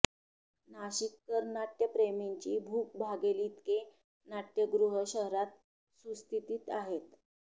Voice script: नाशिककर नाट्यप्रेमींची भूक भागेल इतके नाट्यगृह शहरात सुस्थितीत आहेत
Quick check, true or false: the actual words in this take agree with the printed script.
true